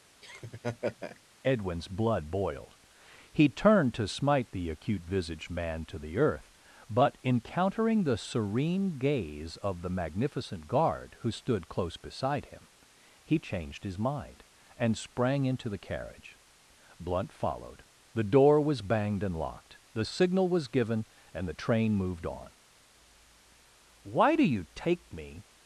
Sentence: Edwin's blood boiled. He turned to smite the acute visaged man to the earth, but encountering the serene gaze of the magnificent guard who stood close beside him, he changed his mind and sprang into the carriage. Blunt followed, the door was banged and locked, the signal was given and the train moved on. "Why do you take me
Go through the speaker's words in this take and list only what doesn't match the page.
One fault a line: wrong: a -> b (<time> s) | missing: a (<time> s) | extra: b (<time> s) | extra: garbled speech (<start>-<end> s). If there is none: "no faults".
no faults